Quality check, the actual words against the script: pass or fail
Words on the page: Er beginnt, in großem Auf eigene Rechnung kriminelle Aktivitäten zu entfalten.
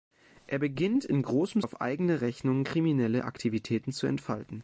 pass